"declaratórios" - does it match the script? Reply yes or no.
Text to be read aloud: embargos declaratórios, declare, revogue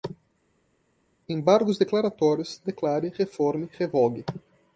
yes